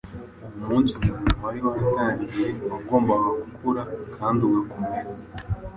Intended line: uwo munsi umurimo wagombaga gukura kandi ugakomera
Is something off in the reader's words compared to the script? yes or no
yes